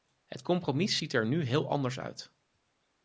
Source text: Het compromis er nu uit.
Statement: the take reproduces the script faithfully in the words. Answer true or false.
false